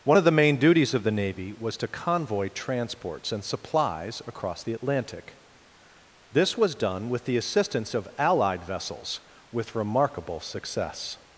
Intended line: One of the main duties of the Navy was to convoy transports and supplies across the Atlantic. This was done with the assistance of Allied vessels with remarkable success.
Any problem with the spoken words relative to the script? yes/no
no